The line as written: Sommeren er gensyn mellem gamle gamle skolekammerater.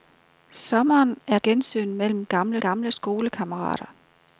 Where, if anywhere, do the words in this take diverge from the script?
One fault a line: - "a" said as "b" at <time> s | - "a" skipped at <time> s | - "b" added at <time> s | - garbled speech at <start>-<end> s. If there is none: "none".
none